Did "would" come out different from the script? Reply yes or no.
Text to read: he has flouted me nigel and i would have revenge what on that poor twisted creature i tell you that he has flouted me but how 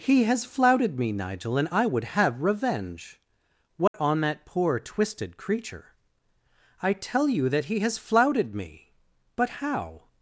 no